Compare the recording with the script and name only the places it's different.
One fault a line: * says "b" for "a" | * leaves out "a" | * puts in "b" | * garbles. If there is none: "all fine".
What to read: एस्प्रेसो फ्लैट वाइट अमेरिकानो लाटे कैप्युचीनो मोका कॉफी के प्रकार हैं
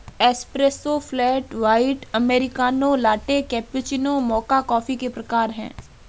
all fine